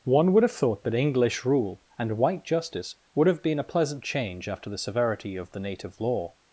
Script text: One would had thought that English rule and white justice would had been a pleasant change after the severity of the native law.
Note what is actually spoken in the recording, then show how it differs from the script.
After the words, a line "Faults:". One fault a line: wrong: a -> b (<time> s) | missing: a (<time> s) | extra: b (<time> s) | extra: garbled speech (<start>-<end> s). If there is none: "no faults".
One would have thought that English rule and white justice would have been a pleasant change after the severity of the native law.
Faults:
wrong: had -> have (0.4 s)
wrong: had -> have (3.3 s)